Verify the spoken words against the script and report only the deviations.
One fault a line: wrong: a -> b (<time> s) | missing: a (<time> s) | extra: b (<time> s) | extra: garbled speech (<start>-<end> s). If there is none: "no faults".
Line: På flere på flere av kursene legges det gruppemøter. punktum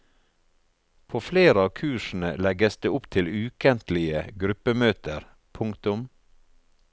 missing: på flere (1.6 s)
extra: opp til ukentlige (3.0 s)